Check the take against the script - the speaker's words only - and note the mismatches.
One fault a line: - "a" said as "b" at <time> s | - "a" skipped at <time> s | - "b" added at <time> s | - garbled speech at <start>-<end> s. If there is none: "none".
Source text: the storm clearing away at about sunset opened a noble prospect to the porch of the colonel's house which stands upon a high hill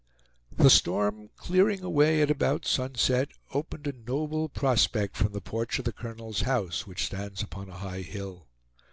- "to" said as "from" at 5.2 s